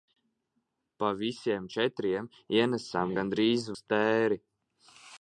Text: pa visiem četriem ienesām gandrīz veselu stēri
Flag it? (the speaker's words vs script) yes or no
yes